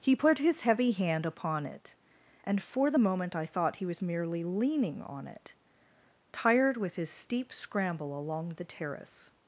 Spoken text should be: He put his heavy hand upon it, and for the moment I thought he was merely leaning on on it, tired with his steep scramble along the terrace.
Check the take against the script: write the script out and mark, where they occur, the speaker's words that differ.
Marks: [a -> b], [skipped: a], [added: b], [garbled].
He put his heavy hand upon it, and for the moment I thought he was merely leaning on [skipped: on] it, tired with his steep scramble along the terrace.